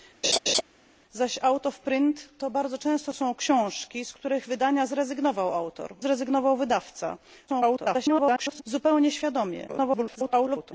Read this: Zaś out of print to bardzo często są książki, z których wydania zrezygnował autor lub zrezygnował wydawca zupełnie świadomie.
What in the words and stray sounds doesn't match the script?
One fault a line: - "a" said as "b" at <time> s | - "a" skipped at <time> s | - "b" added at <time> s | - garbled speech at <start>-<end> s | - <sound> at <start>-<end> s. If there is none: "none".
- laugh at 0.2-0.6 s
- "lub" skipped at 5.9 s
- garbled speech at 7.5-8.6 s
- garbled speech at 9.7-10.7 s